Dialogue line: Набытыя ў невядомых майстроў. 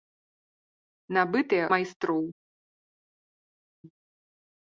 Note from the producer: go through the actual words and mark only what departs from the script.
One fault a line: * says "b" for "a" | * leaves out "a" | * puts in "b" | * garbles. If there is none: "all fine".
* leaves out "ў невядомых"